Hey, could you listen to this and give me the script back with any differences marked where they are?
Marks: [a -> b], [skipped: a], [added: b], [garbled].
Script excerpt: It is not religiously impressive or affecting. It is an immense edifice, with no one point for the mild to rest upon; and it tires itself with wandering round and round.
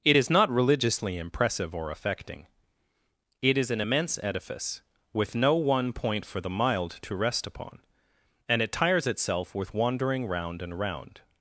It is not religiously impressive or affecting. It is an immense edifice, with no one point for the mild to rest upon; and it tires itself with wandering round and round.